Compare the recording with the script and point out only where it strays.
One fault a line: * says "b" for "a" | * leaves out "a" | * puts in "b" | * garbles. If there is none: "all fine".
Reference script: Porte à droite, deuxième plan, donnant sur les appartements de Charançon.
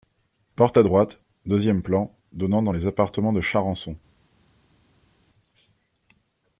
* says "dans" for "sur"